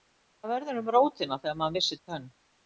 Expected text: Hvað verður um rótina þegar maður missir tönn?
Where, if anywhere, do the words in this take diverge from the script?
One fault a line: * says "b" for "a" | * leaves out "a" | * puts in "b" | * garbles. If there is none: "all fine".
all fine